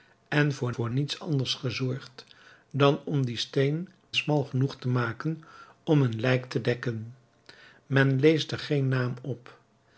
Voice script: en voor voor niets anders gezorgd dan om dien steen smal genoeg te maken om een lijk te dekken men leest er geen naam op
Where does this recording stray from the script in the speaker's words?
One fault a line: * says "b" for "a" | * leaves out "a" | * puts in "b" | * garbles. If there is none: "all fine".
all fine